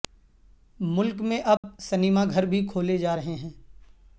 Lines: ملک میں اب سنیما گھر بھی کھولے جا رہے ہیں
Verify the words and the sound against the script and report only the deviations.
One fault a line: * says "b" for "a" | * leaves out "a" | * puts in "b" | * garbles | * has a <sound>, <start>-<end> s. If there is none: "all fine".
* has a dropout, 1.6-1.6 s